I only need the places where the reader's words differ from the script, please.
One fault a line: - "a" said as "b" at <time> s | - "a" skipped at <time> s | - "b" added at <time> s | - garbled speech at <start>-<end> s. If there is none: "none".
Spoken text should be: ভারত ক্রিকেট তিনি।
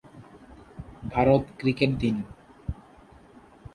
none